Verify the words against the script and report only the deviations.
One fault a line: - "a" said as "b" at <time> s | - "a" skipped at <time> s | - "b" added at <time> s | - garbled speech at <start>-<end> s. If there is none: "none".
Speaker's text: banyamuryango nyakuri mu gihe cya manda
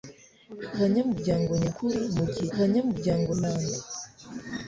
- "cya" said as "banyamuryango" at 2.6 s